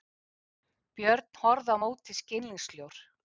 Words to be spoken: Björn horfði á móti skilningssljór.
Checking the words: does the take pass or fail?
pass